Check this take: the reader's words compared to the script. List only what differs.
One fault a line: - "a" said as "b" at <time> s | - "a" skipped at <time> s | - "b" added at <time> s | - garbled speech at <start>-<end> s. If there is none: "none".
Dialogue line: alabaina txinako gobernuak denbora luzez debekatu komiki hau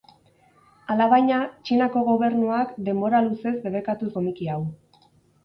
none